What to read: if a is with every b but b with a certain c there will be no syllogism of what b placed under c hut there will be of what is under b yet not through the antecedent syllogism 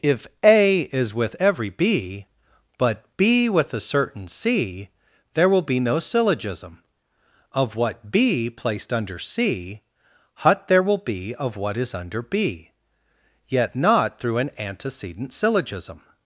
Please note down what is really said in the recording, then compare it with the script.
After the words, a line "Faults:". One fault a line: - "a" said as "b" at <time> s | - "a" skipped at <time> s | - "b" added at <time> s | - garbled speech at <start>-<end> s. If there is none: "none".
if a is with every b but b with a certain c there will be no syllogism of what b placed under c hut there will be of what is under b yet not through an antecedent syllogism
Faults:
- "the" said as "an" at 14.4 s